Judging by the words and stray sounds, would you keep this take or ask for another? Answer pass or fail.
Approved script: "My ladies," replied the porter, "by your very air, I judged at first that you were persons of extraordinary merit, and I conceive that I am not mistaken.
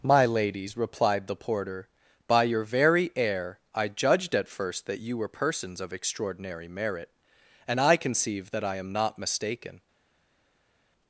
pass